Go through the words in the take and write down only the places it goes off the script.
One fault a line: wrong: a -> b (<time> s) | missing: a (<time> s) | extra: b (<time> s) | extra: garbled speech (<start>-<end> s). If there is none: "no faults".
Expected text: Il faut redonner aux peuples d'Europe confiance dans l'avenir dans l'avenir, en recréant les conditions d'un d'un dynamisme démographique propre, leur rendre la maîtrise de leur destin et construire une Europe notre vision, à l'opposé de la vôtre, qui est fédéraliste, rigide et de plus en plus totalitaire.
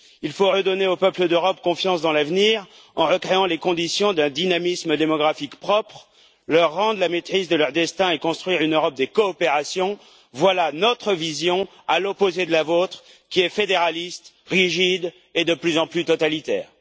missing: dans l'avenir (2.7 s)
missing: d'un (4.3 s)
extra: des coopérations voilà (8.9 s)